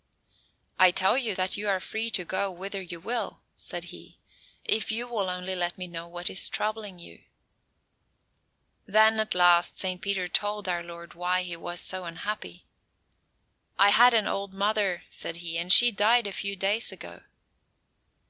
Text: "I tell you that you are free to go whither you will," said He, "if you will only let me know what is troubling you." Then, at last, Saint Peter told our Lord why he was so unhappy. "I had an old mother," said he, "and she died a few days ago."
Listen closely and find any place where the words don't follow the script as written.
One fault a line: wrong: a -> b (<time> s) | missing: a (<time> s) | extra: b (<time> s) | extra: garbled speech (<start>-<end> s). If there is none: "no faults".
no faults